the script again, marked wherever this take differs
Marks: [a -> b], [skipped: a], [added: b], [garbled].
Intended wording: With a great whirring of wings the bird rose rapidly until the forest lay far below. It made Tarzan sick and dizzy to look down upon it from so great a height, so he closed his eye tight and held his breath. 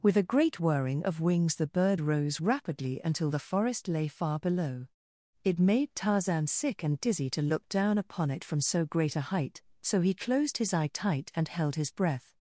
With a great whirring of wings the bird rose rapidly until the forest lay far below. It made Tarzan sick and dizzy to look down upon it from so great a height, so he closed his eye tight and held his breath.